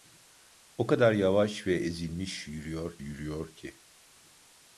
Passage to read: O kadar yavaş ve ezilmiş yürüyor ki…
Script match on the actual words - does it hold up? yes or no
no